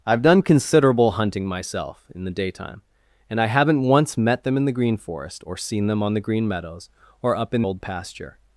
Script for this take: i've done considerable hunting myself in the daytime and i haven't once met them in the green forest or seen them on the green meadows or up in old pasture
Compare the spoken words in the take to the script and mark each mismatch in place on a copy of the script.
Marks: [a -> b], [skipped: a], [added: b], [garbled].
i've done considerable hunting myself in the daytime and i haven't once met them in the green forest or seen them on the green meadows or up in old pasture